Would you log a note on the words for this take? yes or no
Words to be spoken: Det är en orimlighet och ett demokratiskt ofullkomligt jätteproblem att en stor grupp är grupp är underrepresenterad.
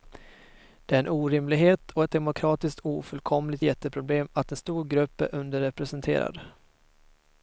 yes